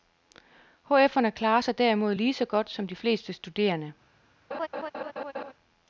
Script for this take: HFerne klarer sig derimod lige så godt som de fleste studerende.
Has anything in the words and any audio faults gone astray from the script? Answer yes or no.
yes